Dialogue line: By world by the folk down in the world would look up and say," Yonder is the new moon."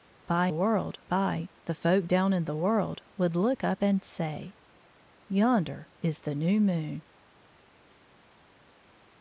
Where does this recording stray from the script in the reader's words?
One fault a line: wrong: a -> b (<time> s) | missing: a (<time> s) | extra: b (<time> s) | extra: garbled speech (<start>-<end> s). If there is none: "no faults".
no faults